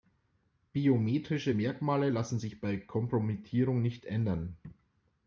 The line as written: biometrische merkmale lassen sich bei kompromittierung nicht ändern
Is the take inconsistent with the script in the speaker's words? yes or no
no